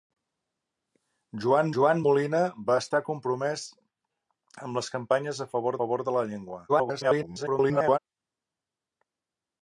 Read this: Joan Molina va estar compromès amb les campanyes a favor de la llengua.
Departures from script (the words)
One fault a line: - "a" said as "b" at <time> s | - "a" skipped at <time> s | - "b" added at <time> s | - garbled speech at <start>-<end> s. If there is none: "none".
- "joan" added at 1.7 s
- "favor" added at 5.8 s
- garbled speech at 6.7-8.0 s